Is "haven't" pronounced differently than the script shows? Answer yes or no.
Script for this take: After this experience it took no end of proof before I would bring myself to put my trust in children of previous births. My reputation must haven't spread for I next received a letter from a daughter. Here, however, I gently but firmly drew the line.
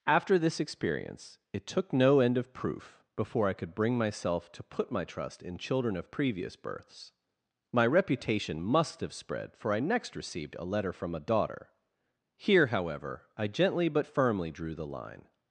yes